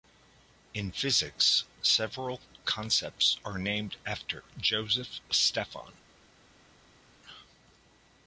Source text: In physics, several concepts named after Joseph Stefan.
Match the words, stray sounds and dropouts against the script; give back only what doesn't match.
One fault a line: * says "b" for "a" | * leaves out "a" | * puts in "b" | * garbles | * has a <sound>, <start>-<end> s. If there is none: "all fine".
* puts in "are"